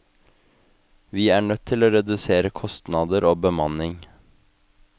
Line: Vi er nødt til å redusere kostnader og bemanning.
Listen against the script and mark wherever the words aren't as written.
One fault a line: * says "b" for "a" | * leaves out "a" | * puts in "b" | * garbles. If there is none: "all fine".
all fine